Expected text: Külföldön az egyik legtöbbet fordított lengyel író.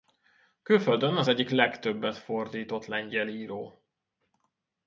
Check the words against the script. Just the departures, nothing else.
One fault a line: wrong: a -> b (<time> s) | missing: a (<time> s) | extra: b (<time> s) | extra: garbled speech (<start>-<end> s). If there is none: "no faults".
no faults